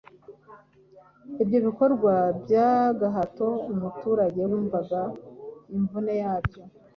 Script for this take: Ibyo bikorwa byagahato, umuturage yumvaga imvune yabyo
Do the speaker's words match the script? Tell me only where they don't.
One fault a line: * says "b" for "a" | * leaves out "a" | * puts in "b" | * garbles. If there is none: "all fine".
all fine